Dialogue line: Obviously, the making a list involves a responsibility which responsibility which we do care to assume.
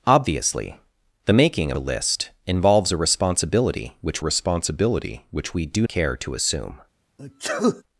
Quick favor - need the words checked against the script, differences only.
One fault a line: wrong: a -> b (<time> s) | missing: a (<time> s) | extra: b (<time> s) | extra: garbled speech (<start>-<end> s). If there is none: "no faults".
no faults